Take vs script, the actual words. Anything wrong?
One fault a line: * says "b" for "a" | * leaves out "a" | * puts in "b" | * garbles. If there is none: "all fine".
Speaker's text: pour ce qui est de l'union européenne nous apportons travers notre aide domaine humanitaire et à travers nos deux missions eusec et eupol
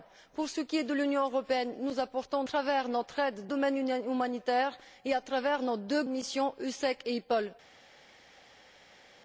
all fine